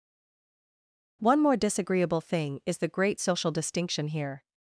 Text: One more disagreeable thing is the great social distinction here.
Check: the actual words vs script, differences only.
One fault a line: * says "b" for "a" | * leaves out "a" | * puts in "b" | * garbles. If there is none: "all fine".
all fine